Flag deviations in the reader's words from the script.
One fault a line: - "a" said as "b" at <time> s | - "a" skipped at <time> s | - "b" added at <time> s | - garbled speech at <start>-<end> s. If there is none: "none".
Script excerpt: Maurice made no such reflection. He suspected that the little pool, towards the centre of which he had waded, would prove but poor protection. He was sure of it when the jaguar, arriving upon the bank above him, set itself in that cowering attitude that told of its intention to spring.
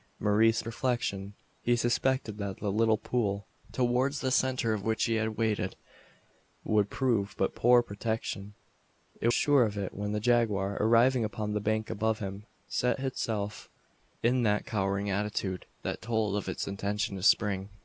- "made no such" skipped at 0.7 s
- "was" skipped at 9.3 s